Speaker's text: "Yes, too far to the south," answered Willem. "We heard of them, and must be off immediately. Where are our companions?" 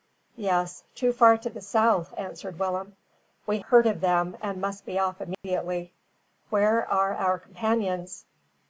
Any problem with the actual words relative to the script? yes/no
no